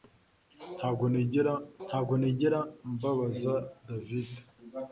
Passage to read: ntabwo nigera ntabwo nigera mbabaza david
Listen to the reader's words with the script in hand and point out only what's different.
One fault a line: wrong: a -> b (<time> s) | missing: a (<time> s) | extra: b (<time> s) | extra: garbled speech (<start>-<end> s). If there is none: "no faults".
no faults